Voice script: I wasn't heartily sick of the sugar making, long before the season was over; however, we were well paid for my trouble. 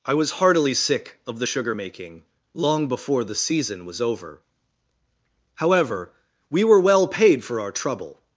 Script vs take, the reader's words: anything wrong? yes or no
yes